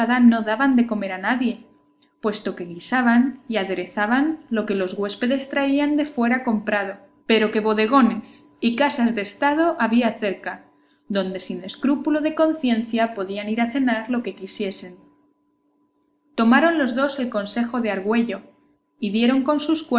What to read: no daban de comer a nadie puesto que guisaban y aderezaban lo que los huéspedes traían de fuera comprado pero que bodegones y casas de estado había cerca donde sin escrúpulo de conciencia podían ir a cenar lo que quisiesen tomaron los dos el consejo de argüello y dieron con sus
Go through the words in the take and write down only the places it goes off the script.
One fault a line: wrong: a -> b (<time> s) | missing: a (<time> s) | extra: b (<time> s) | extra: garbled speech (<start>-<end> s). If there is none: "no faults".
no faults